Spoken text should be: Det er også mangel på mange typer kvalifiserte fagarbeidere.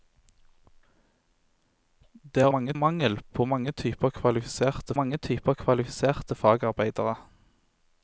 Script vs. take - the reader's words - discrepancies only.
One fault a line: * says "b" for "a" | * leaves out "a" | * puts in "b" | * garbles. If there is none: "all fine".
* says "mange" for "også"
* puts in "mange typer kvalifiserte"